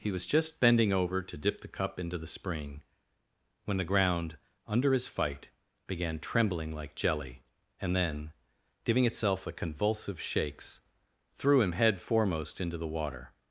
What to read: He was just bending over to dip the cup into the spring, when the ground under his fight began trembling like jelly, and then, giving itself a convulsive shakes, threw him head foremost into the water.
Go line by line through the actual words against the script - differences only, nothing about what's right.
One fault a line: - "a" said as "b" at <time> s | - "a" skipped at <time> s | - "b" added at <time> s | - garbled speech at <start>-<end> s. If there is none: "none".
none